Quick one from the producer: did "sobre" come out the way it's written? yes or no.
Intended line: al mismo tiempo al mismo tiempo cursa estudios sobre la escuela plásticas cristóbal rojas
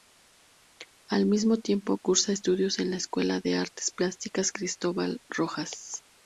no